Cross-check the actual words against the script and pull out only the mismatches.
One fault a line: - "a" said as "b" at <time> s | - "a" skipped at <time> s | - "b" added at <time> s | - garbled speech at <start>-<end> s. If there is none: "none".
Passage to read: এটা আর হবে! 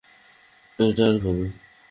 none